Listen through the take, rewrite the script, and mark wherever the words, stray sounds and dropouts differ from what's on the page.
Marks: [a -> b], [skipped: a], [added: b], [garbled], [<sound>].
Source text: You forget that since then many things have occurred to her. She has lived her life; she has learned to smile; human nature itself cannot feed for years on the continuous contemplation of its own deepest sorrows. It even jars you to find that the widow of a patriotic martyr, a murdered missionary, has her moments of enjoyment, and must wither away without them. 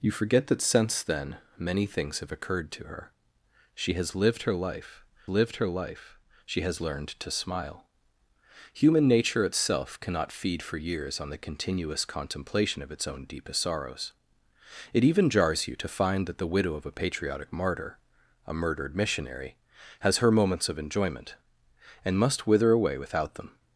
You forget that since then many things have occurred to her. She has lived her life; [added: lived her life] she has learned to smile; human nature itself cannot feed for years on the continuous contemplation of its own deepest sorrows. It even jars you to find that the widow of a patriotic martyr, a murdered missionary, has her moments of enjoyment, and must wither away without them.